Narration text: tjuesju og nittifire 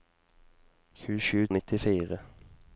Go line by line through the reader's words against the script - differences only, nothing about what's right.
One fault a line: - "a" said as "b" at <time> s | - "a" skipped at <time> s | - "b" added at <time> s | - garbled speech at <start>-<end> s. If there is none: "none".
none